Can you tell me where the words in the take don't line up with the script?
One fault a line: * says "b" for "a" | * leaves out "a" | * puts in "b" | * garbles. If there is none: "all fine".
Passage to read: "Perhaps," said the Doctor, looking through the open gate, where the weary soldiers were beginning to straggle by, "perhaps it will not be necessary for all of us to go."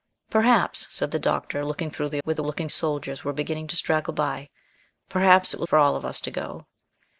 * leaves out "open gate"
* says "looking" for "weary"
* leaves out "not be necessary"